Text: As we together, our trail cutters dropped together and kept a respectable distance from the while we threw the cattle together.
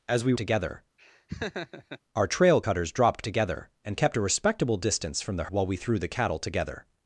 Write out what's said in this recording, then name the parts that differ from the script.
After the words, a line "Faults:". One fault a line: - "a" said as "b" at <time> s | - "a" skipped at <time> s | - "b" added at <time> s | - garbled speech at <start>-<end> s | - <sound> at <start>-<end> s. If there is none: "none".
As we together, our trail cutters dropped together and kept a respectable distance from the while we threw the cattle together.
Faults:
- laugh at 1.0-2.0 s